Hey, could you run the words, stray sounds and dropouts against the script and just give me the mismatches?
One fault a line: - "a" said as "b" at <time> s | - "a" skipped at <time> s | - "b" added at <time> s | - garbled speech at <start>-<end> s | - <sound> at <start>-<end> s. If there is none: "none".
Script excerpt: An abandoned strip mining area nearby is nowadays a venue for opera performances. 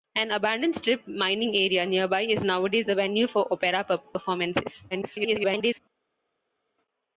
- garbled speech at 4.9-5.8 s